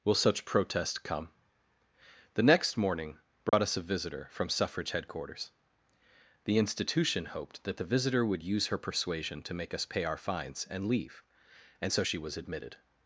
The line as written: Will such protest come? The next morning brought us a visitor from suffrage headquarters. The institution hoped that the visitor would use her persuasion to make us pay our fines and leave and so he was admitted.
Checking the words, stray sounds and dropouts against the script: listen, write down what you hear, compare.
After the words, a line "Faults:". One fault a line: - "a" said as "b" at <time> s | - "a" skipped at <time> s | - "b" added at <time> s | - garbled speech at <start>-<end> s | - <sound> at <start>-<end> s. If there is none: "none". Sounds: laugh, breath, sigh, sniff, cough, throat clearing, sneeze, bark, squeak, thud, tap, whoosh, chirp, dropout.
Will such protest come? The next morning brought us a visitor from suffrage headquarters. The institution hoped that the visitor would use her persuasion to make us pay our fines and leave and so she was admitted.
Faults:
- dropout at 3.5-3.5 s
- "he" said as "she" at 12.0 s